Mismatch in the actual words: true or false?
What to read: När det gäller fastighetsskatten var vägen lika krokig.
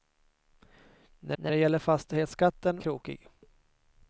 true